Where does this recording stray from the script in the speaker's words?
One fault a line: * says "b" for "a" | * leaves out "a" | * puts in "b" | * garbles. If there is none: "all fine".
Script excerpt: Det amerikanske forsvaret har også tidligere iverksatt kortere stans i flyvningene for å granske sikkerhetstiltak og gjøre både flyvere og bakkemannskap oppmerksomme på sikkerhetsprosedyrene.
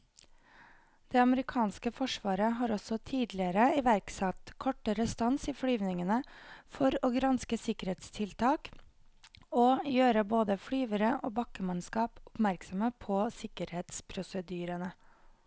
all fine